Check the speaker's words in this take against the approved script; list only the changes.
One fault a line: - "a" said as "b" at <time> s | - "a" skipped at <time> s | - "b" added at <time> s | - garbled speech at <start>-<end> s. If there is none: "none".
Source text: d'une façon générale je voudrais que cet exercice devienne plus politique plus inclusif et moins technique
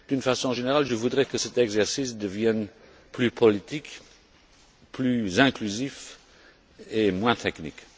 none